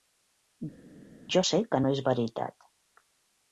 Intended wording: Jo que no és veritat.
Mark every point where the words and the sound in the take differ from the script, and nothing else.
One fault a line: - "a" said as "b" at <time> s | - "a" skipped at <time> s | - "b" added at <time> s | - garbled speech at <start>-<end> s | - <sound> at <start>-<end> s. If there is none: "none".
- "sé" added at 1.5 s